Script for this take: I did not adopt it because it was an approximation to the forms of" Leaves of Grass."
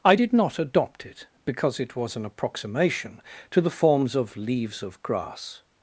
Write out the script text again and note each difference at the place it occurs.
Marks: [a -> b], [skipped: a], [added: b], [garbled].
I did not adopt it because it was an approximation to the forms of" Leaves of Grass."